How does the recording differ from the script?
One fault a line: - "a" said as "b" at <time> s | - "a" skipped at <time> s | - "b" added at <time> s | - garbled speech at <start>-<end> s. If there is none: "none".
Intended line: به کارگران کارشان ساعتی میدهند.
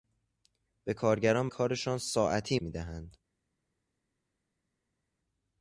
none